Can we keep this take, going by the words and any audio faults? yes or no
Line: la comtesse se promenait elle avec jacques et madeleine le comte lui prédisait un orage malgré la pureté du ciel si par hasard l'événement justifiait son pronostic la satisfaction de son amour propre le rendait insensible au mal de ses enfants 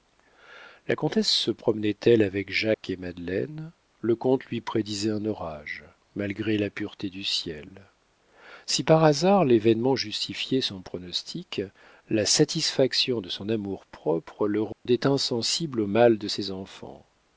no